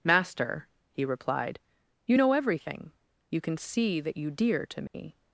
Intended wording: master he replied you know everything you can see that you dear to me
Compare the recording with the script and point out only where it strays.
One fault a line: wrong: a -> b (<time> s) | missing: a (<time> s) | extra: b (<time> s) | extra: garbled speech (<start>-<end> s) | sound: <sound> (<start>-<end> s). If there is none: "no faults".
sound: dropout (4.9-4.9 s)